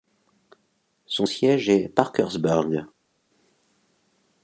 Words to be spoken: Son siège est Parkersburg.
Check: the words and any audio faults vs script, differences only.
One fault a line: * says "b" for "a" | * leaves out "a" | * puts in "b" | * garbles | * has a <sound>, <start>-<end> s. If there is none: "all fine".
all fine